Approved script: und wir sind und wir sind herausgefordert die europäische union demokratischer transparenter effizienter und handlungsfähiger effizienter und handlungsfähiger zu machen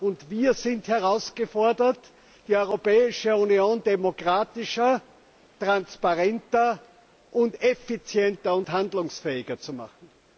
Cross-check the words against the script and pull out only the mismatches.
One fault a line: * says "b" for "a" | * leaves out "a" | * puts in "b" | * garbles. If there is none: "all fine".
* leaves out "und wir sind"
* leaves out "effizienter und handlungsfähiger"